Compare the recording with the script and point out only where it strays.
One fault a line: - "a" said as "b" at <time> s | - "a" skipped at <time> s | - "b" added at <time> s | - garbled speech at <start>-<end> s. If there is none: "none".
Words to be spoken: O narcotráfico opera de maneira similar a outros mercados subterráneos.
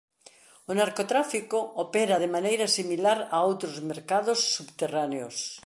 none